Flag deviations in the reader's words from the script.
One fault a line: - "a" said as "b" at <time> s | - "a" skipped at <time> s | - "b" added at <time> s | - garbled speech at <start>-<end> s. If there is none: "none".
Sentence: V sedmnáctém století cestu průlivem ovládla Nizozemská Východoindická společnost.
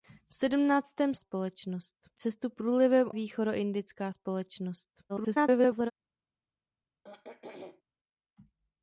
- "století" said as "společnost" at 1.1 s
- "ovládla Nizozemská" skipped at 3.1 s
- garbled speech at 5.1-5.9 s